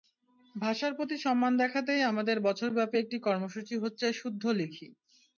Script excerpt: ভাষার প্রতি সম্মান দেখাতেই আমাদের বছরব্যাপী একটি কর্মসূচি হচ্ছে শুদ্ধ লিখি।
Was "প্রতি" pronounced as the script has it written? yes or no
yes